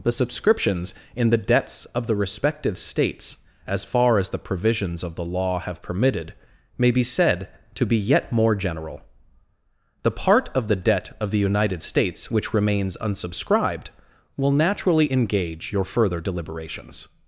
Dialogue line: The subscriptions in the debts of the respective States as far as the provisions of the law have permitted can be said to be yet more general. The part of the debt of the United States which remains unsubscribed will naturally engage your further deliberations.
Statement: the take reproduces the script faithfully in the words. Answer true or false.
false